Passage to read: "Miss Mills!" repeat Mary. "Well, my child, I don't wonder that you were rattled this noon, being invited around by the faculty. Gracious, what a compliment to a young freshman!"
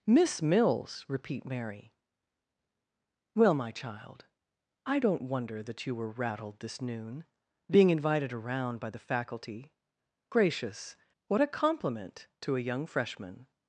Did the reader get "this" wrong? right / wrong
right